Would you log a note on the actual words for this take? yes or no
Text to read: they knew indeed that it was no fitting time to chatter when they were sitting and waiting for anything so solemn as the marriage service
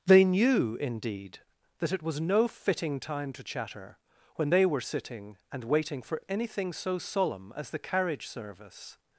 yes